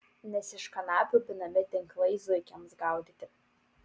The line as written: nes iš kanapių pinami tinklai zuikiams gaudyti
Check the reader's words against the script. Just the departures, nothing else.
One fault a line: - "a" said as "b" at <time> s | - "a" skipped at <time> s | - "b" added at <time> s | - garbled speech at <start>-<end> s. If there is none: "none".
none